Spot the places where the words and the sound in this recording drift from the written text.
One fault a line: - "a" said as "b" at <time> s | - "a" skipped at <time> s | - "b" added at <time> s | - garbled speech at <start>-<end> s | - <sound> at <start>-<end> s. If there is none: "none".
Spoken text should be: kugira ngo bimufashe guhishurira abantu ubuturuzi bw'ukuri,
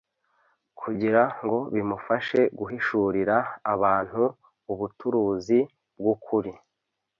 none